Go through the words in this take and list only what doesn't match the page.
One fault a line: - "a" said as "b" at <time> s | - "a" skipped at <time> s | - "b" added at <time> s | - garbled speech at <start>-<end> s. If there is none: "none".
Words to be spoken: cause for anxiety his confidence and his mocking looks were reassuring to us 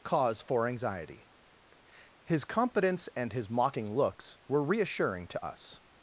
none